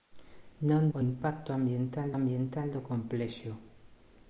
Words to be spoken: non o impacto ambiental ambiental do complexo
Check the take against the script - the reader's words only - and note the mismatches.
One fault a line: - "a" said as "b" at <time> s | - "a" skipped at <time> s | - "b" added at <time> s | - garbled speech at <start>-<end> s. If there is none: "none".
none